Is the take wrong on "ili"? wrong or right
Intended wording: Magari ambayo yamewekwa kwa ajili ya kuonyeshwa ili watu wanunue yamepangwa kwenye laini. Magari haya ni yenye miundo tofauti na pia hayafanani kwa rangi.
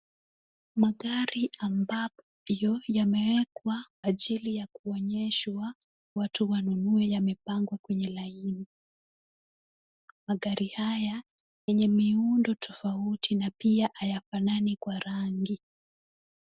wrong